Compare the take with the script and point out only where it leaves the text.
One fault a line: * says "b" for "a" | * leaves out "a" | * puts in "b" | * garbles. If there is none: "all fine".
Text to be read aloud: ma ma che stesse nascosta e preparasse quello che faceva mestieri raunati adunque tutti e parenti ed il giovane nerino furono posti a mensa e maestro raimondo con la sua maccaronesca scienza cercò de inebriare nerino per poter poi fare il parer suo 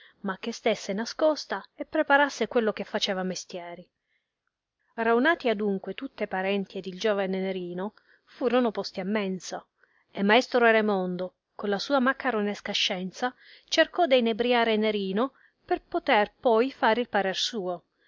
* leaves out "ma"